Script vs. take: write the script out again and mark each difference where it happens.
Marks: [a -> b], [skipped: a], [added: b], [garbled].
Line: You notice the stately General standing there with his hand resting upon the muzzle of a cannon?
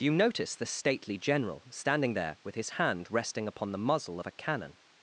You notice the stately General standing there with his hand resting upon the muzzle of a cannon?